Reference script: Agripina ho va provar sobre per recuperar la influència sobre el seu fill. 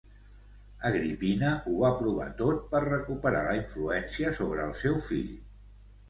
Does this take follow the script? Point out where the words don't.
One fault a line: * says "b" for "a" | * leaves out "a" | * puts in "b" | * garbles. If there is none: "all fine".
* says "tot" for "sobre"